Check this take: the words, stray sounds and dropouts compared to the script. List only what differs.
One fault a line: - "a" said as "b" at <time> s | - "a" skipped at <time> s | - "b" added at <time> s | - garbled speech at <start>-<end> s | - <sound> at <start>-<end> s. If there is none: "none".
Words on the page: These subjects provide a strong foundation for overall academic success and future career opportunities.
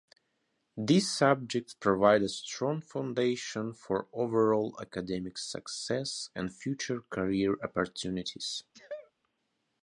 - sneeze at 8.7-9.1 s